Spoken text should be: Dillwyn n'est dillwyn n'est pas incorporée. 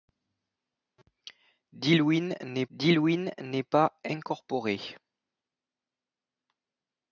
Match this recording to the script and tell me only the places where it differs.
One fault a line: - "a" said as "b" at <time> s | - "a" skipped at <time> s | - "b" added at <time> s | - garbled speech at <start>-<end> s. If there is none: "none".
none